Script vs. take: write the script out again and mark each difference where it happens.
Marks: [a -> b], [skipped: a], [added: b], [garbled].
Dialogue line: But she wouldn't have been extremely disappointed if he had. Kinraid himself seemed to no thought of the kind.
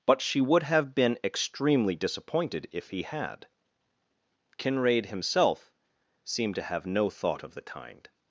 But she [wouldn't -> would] have been extremely disappointed if he had. Kinraid himself seemed to [added: have] no thought of the kind.